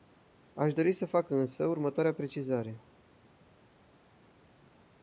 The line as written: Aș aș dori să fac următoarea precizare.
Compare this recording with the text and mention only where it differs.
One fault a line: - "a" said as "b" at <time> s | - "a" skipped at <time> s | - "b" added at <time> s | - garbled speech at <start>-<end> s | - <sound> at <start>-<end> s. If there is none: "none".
- "aș" skipped at 0.7 s
- "însă" added at 1.3 s